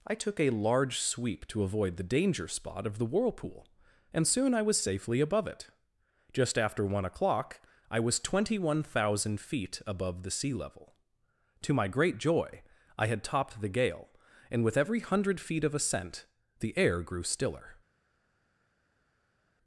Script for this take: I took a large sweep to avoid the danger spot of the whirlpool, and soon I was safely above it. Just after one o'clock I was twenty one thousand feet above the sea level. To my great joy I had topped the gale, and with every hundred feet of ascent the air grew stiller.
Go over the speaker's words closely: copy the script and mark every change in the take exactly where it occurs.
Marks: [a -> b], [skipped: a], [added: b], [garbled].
I took a large sweep to avoid the danger spot of the whirlpool, and soon I was safely above it. Just after one o'clock I was twenty one thousand feet above the sea level. To my great joy I had topped the gale, and with every hundred feet of ascent the air grew stiller.